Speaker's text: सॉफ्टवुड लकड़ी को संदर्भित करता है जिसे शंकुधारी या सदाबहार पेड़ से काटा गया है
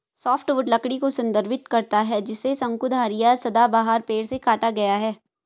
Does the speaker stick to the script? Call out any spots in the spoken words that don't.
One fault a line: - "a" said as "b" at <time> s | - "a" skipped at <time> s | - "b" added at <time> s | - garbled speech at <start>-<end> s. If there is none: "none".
none